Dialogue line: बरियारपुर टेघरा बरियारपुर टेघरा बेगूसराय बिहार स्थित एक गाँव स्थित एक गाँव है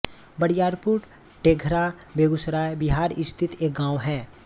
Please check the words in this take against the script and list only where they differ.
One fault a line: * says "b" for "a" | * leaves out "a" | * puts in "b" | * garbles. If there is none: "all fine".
* leaves out "बरियारपुर टेघरा"
* leaves out "स्थित एक गाँव"